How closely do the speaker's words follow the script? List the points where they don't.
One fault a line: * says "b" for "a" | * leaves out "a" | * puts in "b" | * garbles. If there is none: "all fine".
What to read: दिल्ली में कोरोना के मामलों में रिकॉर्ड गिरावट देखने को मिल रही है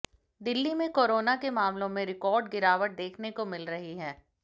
all fine